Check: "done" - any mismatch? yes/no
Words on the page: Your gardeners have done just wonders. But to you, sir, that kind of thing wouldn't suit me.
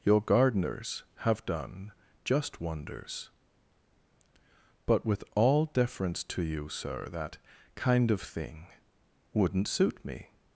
no